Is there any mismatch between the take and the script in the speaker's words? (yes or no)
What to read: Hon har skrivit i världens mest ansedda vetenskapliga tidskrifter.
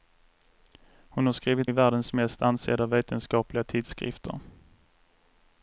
no